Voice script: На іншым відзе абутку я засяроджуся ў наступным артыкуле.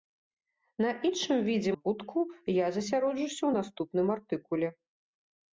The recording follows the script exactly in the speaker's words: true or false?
true